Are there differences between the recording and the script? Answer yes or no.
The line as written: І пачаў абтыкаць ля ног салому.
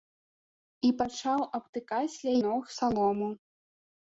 no